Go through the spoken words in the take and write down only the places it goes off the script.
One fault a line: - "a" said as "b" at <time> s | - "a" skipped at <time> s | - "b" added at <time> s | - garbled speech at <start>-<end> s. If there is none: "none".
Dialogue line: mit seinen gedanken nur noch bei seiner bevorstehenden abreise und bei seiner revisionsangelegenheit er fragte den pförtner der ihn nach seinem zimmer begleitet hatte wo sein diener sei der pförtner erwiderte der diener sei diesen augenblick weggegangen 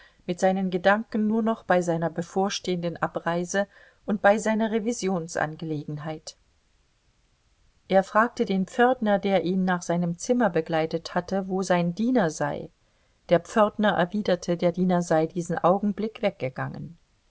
none